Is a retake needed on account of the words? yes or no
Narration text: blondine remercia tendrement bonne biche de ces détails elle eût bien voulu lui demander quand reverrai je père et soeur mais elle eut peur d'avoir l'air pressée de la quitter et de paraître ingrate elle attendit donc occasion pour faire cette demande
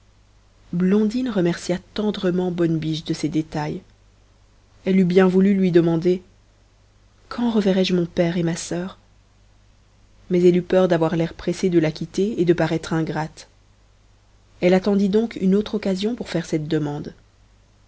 yes